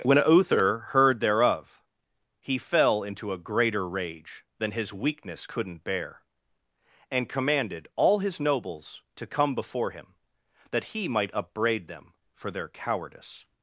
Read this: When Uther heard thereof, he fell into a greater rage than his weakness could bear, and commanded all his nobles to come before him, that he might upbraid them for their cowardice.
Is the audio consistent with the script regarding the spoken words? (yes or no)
no